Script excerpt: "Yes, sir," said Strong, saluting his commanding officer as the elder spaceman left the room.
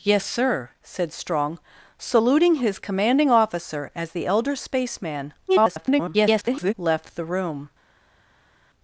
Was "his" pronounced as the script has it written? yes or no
yes